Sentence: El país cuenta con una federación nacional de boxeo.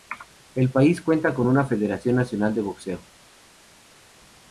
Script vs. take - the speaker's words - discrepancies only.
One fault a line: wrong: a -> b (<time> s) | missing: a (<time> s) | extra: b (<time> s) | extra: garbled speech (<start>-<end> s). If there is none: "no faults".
no faults